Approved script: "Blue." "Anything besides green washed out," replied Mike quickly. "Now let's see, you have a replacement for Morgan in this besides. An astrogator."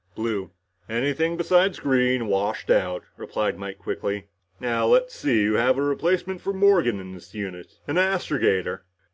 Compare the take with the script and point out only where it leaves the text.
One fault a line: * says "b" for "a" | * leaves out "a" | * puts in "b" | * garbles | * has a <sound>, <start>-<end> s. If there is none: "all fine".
* says "unit" for "besides"